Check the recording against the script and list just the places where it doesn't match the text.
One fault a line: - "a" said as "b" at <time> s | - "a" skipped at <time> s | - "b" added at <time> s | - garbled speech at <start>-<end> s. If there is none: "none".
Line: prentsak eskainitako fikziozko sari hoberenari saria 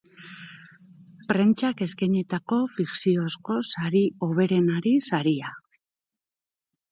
none